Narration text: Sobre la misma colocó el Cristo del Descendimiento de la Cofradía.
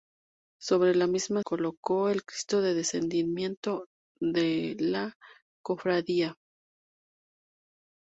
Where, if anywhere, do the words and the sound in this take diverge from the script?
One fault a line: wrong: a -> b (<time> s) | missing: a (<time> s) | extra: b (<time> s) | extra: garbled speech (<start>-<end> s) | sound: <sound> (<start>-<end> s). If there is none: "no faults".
no faults